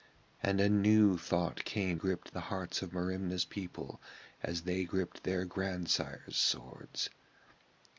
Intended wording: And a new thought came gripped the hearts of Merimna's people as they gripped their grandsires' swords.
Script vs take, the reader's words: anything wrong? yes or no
no